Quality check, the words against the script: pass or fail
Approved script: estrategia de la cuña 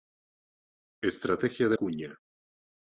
fail